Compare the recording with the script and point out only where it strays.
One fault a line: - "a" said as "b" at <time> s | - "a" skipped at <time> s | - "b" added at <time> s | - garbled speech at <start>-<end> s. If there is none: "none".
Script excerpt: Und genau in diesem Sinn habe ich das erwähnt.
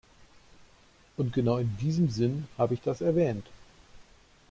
none